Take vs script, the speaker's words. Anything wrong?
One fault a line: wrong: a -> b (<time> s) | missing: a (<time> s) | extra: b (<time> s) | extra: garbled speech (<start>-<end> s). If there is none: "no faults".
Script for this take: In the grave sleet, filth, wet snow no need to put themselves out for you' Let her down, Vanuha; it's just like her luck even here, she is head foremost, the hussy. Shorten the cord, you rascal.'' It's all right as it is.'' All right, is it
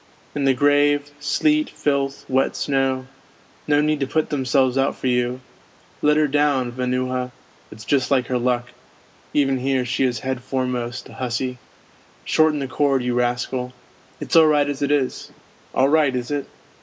no faults